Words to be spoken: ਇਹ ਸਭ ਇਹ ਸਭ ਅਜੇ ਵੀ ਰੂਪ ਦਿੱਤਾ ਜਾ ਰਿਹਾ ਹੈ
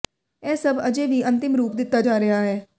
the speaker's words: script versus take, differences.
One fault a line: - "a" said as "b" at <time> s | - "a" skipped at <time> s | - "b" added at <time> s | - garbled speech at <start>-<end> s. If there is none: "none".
- "ਇਹ ਸਭ" skipped at 0.8 s
- "ਅੰਤਿਮ" added at 1.2 s